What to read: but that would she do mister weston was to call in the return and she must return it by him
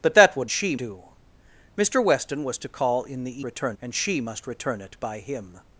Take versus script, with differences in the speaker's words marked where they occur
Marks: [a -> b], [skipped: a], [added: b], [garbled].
but that would she do mister weston was to call in the return and she must return it by him